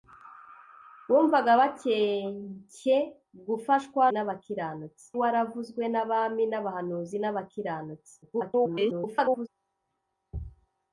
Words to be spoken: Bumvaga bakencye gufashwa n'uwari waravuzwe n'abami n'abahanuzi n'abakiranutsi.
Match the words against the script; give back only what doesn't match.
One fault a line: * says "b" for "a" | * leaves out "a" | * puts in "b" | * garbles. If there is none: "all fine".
* says "n'abakiranutsi" for "n'uwari"
* garbles